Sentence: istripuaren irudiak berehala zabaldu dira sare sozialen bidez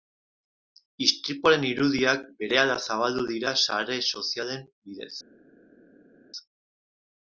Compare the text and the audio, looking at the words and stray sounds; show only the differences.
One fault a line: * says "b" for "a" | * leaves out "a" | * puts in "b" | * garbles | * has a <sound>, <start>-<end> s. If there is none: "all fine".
all fine